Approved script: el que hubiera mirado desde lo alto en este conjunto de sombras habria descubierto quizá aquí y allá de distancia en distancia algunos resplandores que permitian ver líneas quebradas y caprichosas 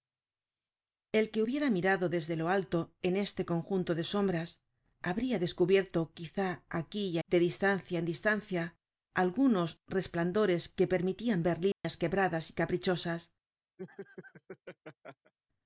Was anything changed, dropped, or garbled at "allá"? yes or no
yes